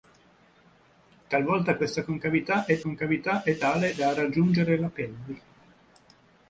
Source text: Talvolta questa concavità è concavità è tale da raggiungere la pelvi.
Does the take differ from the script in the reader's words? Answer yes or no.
no